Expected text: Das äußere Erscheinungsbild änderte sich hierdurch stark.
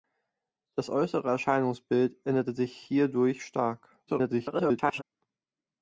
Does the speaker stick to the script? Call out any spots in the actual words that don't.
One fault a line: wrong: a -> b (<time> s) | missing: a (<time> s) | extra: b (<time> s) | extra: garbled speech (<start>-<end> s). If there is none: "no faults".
extra: garbled speech (4.1-5.0 s)